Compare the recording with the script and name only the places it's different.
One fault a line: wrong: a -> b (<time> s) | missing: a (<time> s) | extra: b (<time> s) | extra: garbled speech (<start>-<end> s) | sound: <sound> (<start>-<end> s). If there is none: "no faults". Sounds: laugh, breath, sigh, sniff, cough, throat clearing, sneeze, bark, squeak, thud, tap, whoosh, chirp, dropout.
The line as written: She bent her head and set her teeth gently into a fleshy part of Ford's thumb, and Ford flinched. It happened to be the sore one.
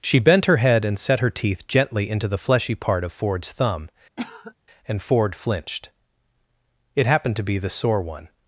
wrong: a -> the (2.3 s)
sound: cough (4.2-4.5 s)